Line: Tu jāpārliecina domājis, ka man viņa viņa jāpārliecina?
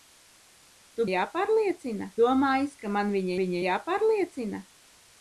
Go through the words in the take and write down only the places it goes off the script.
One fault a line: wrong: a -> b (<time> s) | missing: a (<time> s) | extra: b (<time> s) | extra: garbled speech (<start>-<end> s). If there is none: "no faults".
no faults